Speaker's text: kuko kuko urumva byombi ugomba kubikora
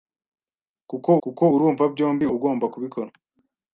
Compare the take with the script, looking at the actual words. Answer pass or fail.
pass